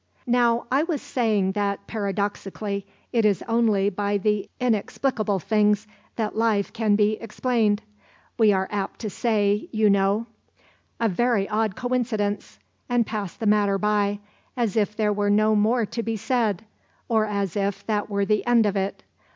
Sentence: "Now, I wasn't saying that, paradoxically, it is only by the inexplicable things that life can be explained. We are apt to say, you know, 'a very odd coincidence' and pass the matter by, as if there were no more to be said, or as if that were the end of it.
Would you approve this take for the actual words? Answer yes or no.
no